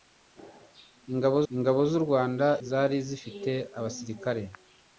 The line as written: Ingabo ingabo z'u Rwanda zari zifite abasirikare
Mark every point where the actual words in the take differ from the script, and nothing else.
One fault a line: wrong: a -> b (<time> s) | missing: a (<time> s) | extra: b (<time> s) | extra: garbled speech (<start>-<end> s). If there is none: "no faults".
no faults